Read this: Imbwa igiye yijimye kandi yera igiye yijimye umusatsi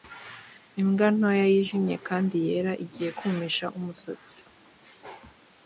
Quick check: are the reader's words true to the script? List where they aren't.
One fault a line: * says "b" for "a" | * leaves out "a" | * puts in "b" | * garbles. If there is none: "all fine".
* says "ntoya" for "igiye"
* says "kumisha" for "yijimye"